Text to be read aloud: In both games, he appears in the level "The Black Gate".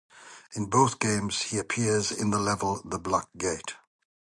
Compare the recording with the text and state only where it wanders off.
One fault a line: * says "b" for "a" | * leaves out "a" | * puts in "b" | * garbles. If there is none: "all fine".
all fine